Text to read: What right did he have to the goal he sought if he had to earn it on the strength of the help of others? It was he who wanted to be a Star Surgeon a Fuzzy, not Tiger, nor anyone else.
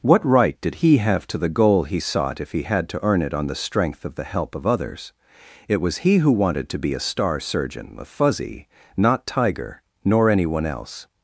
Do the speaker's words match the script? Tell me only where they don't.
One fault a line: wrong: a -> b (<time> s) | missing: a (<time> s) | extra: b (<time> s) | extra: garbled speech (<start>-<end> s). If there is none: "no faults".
no faults